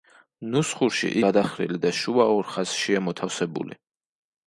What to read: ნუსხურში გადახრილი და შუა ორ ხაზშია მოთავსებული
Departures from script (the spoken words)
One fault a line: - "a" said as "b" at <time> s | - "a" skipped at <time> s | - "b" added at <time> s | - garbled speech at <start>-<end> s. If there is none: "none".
none